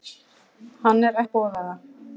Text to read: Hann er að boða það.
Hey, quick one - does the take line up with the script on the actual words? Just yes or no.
yes